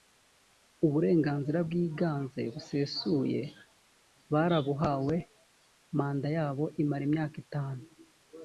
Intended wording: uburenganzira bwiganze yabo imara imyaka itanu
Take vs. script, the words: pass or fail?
fail